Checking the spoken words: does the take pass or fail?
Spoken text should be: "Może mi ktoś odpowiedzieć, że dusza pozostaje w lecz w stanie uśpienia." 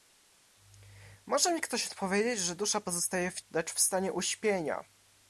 pass